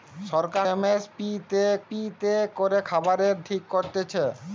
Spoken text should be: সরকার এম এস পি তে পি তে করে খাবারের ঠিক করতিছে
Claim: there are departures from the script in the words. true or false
false